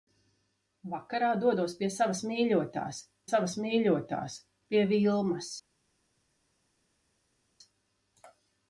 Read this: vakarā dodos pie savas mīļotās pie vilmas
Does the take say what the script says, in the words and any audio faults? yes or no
no